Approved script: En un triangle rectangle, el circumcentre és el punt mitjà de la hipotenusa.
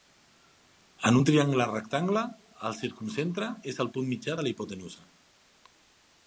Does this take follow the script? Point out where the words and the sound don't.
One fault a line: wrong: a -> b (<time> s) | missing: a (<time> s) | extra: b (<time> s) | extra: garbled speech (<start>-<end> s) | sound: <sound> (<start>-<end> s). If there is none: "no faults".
no faults